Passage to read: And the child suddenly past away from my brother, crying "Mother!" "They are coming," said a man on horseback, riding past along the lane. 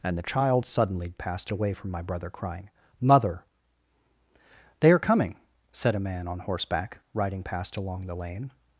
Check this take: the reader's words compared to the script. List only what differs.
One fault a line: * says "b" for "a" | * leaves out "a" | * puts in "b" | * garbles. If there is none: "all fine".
all fine